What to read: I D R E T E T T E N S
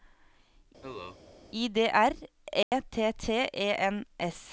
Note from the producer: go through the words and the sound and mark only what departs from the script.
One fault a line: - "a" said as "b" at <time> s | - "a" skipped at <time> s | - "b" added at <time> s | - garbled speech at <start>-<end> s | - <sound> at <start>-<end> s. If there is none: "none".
- cough at 0.8-1.2 s
- dropout at 2.6-2.7 s
- "E T" skipped at 3.1 s